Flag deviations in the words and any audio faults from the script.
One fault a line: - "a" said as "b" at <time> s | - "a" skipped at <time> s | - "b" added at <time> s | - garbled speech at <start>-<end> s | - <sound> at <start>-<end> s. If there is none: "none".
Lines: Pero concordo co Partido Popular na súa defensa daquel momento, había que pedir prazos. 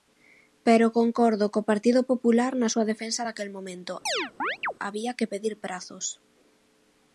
- chirp at 4.1-4.7 s